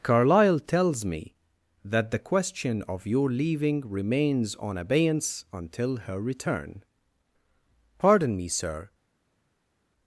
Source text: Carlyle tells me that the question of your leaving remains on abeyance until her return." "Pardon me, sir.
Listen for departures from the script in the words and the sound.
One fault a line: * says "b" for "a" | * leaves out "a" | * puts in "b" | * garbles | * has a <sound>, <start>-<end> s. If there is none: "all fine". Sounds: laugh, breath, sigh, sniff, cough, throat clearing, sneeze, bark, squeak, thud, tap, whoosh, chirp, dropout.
all fine